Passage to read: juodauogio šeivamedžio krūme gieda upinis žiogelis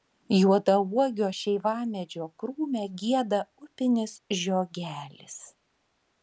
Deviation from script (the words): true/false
false